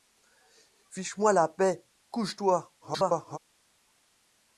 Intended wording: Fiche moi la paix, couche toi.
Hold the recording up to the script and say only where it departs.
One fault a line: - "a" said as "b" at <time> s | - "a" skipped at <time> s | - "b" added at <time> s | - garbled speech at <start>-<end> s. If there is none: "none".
- garbled speech at 2.8-3.4 s